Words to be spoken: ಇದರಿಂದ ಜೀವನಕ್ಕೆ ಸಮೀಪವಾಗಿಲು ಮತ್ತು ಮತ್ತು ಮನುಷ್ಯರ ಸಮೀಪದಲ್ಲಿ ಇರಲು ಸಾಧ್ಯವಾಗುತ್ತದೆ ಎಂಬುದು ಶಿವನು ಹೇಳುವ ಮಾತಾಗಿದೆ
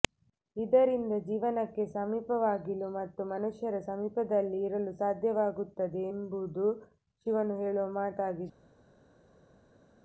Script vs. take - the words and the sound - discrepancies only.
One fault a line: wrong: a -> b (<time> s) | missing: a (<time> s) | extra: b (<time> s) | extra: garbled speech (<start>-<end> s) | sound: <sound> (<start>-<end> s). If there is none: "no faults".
missing: ಮತ್ತು (3.2 s)